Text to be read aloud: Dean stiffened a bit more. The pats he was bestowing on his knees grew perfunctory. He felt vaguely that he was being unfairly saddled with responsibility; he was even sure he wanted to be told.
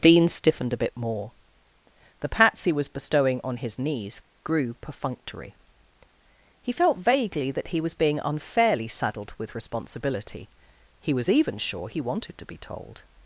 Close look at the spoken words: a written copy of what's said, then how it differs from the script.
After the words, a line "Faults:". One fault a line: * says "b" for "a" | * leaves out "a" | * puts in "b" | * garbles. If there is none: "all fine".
Dean stiffened a bit more. The pats he was bestowing on his knees grew perfunctory. He felt vaguely that he was being unfairly saddled with responsibility; he was even sure he wanted to be told.
Faults:
all fine